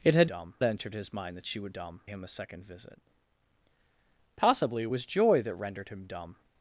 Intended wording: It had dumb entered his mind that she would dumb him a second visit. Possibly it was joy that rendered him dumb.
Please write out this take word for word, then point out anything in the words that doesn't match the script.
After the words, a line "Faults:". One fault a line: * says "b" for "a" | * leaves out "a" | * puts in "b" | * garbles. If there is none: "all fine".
It had dumb entered his mind that she would dumb him a second visit. Possibly it was joy that rendered him dumb.
Faults:
all fine